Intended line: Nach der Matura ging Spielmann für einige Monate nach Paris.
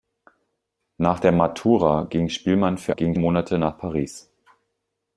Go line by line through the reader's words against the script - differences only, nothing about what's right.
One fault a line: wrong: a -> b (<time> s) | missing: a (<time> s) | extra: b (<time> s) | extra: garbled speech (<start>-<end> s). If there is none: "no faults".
wrong: einige -> ging (2.9 s)